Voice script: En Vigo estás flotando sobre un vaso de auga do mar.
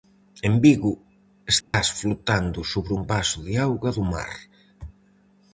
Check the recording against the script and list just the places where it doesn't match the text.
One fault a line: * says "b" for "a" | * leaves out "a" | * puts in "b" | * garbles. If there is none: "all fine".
all fine